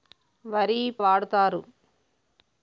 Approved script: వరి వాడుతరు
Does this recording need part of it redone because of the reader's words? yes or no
no